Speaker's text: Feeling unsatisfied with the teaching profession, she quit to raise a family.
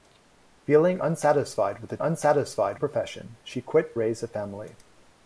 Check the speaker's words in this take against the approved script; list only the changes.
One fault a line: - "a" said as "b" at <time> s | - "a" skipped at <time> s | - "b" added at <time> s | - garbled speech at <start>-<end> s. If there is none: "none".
- "teaching" said as "unsatisfied" at 2.0 s
- "to" skipped at 3.9 s